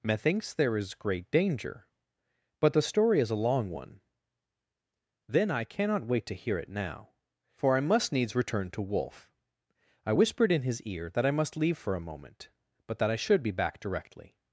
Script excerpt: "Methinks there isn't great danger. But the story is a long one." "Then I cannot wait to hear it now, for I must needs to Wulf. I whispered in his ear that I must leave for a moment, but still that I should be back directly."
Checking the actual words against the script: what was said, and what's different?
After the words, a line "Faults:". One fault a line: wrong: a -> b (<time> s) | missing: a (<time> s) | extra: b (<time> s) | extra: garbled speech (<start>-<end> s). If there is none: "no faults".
"Methinks there is great danger. But the story is a long one." "Then I cannot wait to hear it now, for I must needs return to Wulf. I whispered in his ear that I must leave for a moment, but that I should be back directly."
Faults:
wrong: isn't -> is (0.8 s)
extra: return (8.3 s)
missing: still (13.0 s)